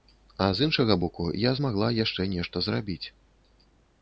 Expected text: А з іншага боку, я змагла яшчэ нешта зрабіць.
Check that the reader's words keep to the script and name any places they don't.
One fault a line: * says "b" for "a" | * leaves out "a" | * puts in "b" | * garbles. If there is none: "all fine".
all fine